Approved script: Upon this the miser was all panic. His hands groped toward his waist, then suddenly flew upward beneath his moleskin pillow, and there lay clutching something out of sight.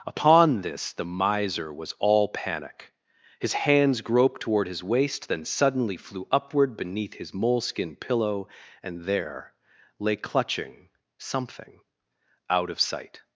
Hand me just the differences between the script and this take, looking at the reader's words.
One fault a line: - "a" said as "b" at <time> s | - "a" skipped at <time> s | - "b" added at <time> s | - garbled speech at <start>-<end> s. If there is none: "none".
none